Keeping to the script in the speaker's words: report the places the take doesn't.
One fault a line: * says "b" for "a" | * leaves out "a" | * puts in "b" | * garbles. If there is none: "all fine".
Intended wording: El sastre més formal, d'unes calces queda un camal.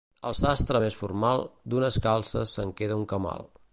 * puts in "se'n"